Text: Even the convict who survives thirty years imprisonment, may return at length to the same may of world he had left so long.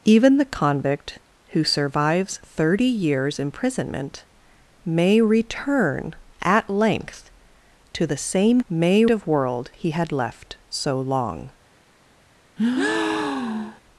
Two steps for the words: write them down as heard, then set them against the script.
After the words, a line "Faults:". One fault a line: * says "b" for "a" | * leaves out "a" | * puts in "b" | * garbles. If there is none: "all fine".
Even the convict who survives thirty years imprisonment, may return at length to the same may of world he had left so long.
Faults:
all fine